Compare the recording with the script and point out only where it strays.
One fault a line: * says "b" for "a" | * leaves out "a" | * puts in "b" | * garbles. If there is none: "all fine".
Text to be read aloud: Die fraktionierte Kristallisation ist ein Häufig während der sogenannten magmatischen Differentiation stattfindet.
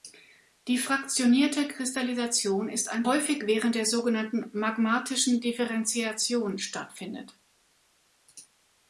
all fine